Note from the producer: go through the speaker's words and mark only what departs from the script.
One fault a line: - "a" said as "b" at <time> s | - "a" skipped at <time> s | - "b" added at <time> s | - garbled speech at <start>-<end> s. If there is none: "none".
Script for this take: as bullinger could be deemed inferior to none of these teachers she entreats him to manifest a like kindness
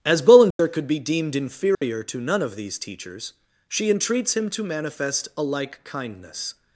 none